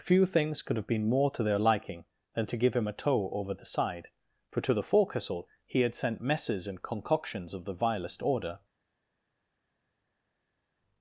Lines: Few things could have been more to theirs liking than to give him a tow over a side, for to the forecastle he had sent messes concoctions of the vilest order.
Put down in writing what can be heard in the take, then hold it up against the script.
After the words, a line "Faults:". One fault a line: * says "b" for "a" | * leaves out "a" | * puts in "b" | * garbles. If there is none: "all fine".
Few things could have been more to their liking than to give him a tow over the side, for to the forecastle he had sent messes and concoctions of the vilest order.
Faults:
* says "their" for "theirs"
* says "the" for "a"
* puts in "and"